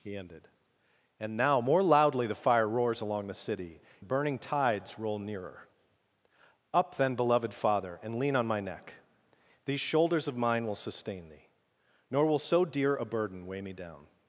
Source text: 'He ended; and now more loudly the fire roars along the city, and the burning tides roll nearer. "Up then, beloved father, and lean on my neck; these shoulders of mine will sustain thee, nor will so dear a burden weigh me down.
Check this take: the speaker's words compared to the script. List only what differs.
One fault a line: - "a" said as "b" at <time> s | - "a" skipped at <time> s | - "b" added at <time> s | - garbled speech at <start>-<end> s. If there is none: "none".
- "and" skipped at 3.8 s